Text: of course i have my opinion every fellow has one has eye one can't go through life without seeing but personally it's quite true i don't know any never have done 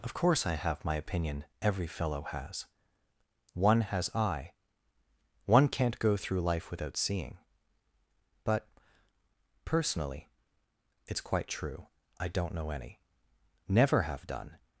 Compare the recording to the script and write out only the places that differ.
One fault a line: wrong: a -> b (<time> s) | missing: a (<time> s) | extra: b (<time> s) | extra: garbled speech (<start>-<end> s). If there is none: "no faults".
no faults